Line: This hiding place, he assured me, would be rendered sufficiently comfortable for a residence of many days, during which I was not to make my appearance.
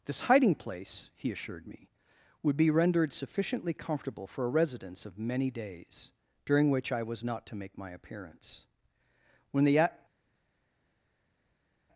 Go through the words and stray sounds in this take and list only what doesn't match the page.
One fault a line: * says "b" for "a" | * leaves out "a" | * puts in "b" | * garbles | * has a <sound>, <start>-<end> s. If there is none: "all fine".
* puts in "When the"